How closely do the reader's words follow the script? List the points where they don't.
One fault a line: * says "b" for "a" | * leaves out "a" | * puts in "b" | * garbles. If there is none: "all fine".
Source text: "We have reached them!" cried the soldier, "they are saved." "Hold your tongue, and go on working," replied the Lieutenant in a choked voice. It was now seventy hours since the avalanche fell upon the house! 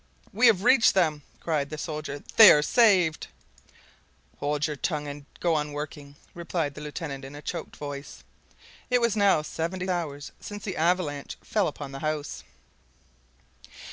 all fine